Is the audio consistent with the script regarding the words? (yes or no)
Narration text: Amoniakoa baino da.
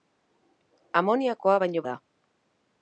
yes